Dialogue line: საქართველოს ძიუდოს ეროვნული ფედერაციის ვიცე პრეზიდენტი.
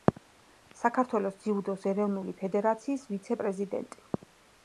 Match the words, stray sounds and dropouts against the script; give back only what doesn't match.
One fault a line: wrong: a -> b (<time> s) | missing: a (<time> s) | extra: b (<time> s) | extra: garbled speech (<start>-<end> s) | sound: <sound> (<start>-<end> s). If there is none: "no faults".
no faults